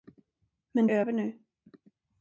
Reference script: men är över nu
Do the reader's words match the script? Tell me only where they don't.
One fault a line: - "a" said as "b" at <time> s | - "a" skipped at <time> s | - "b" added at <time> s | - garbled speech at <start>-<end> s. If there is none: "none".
none